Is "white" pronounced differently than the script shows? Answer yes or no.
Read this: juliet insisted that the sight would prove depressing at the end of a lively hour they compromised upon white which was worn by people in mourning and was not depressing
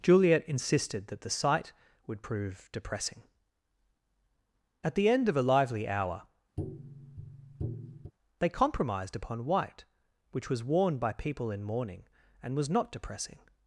no